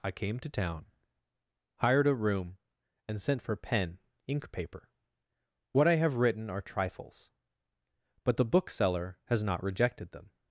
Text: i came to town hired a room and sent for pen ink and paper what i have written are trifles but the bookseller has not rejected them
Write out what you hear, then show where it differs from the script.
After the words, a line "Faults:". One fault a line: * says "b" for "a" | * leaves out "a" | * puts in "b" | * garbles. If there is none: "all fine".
i came to town hired a room and sent for pen ink paper what i have written are trifles but the bookseller has not rejected them
Faults:
* leaves out "and"